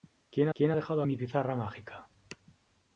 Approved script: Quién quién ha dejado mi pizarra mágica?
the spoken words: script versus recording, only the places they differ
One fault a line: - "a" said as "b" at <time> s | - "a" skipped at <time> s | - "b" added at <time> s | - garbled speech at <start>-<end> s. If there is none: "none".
none